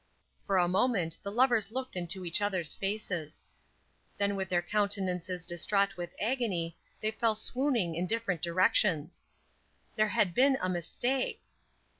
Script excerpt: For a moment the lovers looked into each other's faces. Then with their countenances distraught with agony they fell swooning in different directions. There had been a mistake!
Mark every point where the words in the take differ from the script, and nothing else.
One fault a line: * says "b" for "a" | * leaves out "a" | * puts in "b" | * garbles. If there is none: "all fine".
all fine